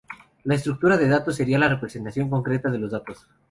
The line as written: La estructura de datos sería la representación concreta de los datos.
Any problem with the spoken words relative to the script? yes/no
no